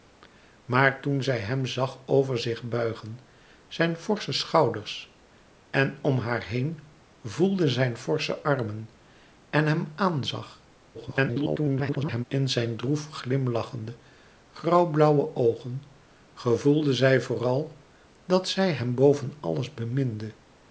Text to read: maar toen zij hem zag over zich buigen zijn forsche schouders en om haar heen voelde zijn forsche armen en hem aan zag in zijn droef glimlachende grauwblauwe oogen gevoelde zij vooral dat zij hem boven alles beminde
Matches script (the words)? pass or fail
fail